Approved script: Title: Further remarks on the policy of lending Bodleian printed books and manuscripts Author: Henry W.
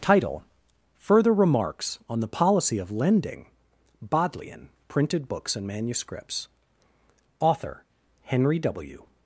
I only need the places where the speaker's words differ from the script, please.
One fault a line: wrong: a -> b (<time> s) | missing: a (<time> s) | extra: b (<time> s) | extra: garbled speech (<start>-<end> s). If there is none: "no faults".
no faults